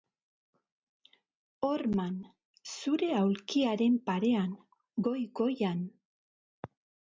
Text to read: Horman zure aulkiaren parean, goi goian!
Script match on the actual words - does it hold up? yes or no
yes